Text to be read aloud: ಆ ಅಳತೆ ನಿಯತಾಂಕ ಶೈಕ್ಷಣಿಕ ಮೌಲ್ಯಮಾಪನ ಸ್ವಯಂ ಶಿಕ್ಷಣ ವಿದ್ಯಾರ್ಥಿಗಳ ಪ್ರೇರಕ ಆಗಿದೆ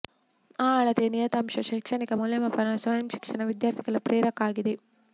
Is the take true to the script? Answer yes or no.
yes